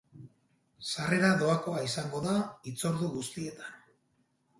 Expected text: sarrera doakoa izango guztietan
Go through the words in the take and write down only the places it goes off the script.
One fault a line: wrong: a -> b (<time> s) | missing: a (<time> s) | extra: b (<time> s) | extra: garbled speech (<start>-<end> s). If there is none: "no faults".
extra: da hitzordu (2.2 s)